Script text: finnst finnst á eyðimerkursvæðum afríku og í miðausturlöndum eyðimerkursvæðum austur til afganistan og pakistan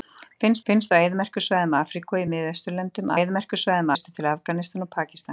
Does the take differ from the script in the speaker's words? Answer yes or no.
no